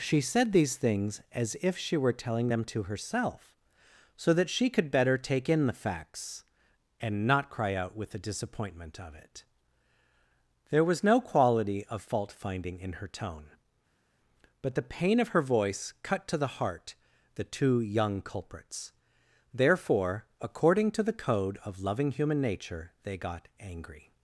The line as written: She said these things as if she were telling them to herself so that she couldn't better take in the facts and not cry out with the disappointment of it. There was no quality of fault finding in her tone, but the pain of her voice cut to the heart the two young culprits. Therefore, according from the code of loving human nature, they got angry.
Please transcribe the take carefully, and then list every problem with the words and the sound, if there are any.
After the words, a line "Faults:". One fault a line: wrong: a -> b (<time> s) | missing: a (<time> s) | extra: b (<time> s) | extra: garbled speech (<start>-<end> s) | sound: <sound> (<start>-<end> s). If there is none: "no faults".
She said these things as if she were telling them to herself so that she could better take in the facts and not cry out with the disappointment of it. There was no quality of fault finding in her tone, but the pain of her voice cut to the heart the two young culprits. Therefore, according to the code of loving human nature, they got angry.
Faults:
wrong: couldn't -> could (4.7 s)
wrong: from -> to (20.9 s)